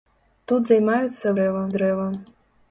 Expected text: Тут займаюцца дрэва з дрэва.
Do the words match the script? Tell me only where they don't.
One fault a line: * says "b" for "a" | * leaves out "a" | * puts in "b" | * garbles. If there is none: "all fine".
all fine